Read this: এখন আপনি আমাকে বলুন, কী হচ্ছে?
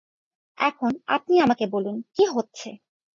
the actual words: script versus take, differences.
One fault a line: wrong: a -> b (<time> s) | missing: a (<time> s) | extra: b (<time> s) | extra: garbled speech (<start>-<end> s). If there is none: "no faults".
no faults